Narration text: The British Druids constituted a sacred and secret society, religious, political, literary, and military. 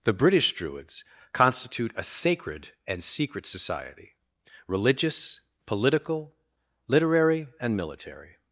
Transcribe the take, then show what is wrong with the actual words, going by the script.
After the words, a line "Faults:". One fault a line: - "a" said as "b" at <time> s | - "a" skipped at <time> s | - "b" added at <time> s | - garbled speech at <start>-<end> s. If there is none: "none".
The British Druids constitute a sacred and secret society, religious, political, literary, and military.
Faults:
- "constituted" said as "constitute" at 1.3 s